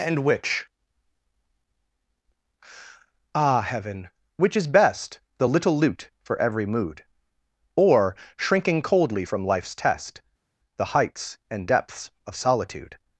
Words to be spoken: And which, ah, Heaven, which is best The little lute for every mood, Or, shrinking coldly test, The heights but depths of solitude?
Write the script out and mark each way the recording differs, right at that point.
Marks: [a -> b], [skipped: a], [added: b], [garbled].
And which, ah, Heaven, which is best The little lute for every mood, Or, shrinking coldly [added: from life's] test, The heights [but -> and] depths of solitude?